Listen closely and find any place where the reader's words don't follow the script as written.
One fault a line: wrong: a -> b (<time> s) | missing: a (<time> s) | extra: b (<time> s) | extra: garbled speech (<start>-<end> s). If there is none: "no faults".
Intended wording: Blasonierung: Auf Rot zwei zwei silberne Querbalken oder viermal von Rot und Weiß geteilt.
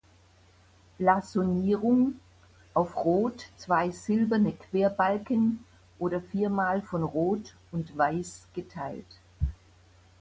missing: zwei (3.9 s)